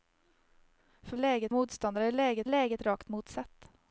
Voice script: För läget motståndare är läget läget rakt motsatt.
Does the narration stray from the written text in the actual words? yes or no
no